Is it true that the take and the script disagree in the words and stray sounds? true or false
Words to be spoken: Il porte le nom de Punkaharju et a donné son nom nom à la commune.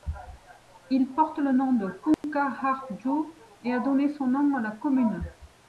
true